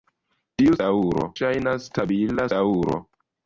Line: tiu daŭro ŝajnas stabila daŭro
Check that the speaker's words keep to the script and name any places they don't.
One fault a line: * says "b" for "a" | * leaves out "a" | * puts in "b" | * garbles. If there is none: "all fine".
all fine